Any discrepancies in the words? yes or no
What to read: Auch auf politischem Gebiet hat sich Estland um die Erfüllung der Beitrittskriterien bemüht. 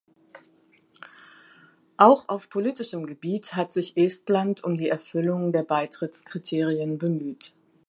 no